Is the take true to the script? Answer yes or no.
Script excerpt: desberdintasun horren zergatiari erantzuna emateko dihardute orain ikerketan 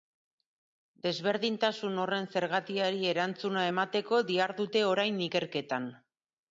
yes